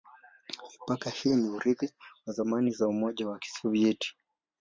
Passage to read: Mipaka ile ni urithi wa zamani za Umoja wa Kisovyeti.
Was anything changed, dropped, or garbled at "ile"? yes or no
yes